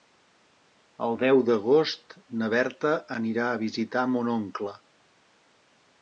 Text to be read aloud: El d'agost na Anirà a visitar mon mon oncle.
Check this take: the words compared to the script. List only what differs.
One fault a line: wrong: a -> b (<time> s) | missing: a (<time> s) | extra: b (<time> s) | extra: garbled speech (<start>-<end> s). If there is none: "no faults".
extra: deu (1.2 s)
extra: Berta (2.5 s)
missing: mon (4.3 s)